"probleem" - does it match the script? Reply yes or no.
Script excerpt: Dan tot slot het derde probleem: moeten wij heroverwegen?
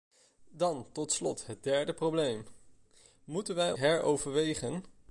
yes